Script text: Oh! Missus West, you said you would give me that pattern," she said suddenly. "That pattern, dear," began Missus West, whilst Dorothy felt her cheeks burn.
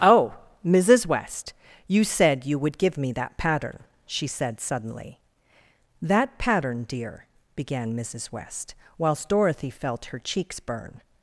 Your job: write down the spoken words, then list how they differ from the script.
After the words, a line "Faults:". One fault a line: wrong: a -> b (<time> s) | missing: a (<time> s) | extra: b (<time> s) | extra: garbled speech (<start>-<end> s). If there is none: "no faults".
Oh! Missus West, you said you would give me that pattern," she said suddenly. "That pattern, dear," began Missus West, whilst Dorothy felt her cheeks burn.
Faults:
no faults